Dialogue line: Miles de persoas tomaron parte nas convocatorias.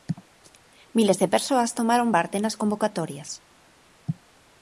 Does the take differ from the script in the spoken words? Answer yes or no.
no